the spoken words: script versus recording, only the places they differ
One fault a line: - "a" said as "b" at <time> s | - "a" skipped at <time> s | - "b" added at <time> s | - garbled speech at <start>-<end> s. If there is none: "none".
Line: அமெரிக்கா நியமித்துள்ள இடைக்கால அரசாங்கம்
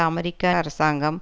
- "நியமித்துள்ள இடைக்கால" skipped at 0.5 s